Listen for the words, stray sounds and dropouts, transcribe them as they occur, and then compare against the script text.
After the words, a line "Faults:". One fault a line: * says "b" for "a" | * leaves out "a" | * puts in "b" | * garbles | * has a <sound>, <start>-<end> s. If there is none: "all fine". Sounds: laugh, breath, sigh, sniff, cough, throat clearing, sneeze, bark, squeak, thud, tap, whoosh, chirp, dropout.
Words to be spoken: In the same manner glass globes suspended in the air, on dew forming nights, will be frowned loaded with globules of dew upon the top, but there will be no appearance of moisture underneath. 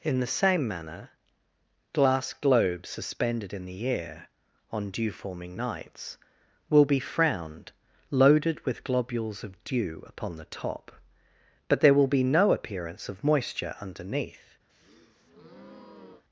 In the same manner glass globes suspended in the air, on dew forming nights, will be frowned loaded with globules of dew upon the top, but there will be no appearance of moisture underneath.
Faults:
* has a breath, 14.7-16.2 s